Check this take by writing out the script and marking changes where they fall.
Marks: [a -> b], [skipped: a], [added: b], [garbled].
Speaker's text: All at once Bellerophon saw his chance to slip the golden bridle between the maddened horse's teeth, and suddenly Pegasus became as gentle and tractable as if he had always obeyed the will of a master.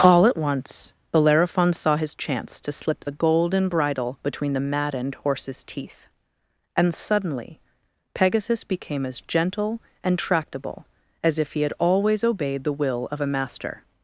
All at once Bellerophon saw his chance to slip the golden bridle between the maddened horse's teeth, and suddenly Pegasus became as gentle and tractable as if he had always obeyed the will of a master.